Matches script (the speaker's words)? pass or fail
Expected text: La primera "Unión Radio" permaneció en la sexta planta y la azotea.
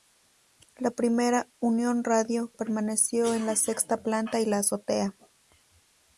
pass